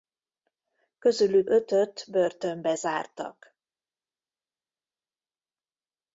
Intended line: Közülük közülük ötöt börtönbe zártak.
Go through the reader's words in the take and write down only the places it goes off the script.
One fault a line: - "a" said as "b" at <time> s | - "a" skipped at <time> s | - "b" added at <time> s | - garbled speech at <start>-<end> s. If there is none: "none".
- "közülük" skipped at 1.5 s